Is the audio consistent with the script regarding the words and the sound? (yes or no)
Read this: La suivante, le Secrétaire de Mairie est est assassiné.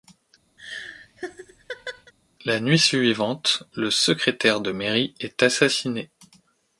no